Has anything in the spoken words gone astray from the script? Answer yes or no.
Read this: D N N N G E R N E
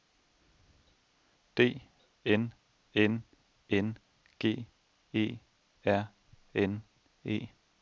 no